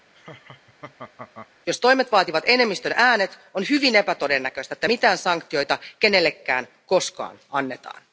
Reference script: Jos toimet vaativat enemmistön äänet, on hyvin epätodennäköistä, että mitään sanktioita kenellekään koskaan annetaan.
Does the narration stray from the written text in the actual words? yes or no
no